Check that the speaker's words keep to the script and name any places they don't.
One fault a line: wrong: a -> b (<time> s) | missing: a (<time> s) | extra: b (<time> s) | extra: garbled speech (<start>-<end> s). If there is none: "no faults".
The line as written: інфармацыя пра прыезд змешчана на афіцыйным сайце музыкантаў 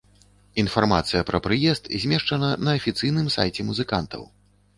no faults